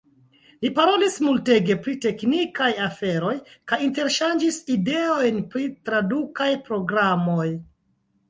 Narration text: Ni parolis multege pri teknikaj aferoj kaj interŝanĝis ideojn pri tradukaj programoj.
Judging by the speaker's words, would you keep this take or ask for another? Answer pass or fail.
pass